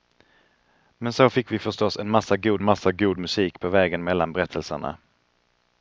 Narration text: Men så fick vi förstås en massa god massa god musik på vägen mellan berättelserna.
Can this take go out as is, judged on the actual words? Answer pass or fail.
pass